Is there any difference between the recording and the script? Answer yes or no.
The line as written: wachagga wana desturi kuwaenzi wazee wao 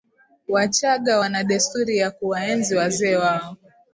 yes